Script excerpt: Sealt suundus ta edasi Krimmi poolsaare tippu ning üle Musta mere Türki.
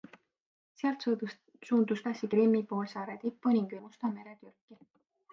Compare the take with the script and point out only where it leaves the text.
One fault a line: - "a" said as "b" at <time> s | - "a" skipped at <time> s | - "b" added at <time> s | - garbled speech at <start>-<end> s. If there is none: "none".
- "ta" skipped at 2.0 s
- "üle" skipped at 3.8 s